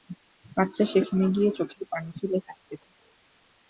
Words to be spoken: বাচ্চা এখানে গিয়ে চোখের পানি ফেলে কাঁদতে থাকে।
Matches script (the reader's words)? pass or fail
fail